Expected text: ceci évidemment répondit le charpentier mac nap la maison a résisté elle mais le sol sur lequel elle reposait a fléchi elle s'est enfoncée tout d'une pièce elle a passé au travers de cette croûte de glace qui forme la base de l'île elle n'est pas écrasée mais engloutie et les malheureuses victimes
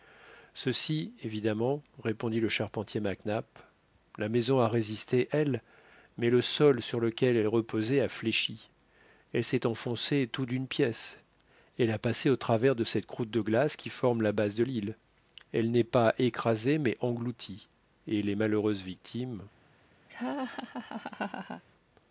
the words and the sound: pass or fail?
fail